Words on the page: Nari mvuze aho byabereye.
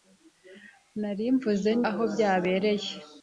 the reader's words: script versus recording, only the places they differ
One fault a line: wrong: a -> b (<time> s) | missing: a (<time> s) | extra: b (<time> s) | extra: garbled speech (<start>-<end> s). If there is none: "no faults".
no faults